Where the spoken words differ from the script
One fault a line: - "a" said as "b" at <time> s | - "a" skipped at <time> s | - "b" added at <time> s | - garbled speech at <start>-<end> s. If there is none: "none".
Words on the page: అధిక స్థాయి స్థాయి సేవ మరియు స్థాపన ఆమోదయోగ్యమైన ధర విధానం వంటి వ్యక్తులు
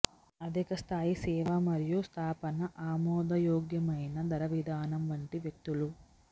- "స్థాయి" skipped at 1.1 s